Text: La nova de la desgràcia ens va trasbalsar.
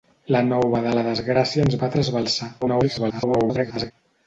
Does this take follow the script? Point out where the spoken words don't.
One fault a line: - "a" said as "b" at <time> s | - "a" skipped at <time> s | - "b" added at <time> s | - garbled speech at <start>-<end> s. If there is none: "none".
- garbled speech at 2.6-3.9 s